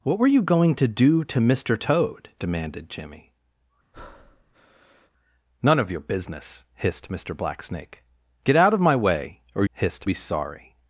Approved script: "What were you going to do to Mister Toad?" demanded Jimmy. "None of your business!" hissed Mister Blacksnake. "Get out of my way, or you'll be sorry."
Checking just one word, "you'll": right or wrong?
wrong